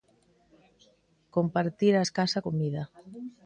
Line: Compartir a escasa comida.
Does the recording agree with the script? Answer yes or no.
yes